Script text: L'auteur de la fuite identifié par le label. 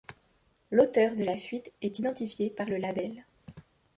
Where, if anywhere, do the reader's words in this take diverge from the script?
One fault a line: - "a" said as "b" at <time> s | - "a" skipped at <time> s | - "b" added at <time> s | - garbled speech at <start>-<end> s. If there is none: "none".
- "est" added at 1.8 s